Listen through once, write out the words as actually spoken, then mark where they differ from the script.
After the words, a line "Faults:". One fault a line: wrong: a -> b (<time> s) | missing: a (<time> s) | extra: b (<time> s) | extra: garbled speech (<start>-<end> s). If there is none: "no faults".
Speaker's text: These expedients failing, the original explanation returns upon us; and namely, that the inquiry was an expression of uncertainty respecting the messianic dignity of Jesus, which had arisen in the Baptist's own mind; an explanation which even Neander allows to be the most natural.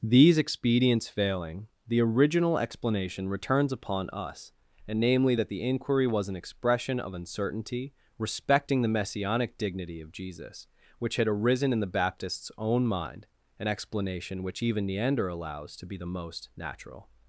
These expedients failing, the original explanation returns upon us; and namely, that the inquiry was an expression of uncertainty respecting the messianic dignity of Jesus, which had arisen in the Baptist's own mind; an explanation which even Neander allows to be the most natural.
Faults:
no faults